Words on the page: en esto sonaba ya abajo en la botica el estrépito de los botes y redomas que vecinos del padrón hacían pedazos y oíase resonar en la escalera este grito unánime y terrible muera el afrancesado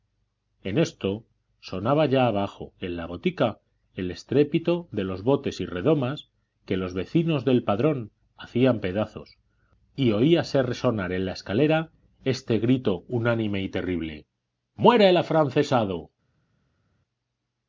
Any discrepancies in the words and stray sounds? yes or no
yes